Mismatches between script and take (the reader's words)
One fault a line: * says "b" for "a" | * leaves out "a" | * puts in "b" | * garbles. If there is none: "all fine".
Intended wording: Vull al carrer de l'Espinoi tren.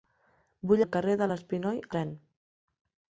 all fine